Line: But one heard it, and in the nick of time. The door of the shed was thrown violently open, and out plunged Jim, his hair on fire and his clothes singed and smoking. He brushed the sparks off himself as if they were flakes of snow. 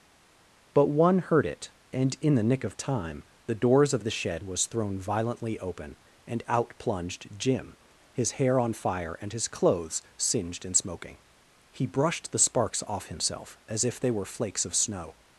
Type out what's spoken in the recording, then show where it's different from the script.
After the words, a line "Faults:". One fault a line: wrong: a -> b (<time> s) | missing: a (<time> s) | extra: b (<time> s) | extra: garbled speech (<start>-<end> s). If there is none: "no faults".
But one heard it, and in the nick of time. The doors of the shed was thrown violently open, and out plunged Jim, his hair on fire and his clothes singed and smoking. He brushed the sparks off himself as if they were flakes of snow.
Faults:
wrong: door -> doors (3.5 s)